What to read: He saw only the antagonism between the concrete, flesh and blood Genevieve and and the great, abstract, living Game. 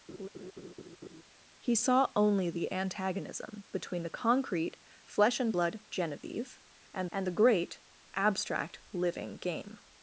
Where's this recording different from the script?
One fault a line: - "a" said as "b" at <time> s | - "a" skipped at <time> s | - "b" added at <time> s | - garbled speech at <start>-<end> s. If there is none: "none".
none